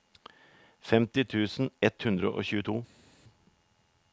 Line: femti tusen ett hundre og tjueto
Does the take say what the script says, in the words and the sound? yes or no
yes